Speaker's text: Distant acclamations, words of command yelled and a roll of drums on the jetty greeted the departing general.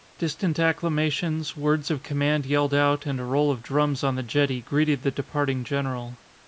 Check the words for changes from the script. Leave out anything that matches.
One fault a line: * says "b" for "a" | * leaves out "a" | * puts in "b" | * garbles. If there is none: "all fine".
* puts in "out"